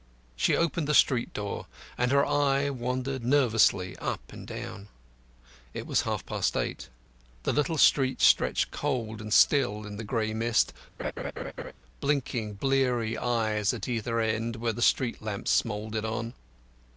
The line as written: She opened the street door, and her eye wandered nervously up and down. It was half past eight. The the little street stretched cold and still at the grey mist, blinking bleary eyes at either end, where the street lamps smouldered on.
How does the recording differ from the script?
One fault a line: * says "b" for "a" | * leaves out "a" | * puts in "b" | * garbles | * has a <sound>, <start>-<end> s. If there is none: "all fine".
* leaves out "the"
* says "in" for "at"
* has a laugh, 11.0-11.7 s